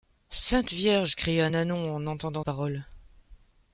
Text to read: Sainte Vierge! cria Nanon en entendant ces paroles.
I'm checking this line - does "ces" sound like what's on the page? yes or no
no